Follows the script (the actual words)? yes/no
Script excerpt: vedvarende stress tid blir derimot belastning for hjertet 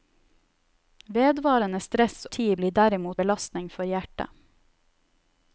yes